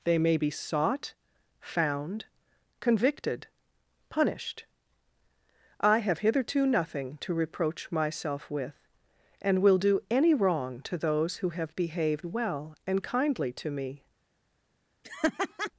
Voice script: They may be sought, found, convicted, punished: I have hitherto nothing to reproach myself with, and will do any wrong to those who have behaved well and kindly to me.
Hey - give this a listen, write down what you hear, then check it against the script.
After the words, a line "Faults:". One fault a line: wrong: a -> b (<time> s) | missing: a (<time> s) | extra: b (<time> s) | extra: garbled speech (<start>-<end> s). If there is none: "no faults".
They may be sought, found, convicted, punished: I have hitherto nothing to reproach myself with, and will do any wrong to those who have behaved well and kindly to me.
Faults:
no faults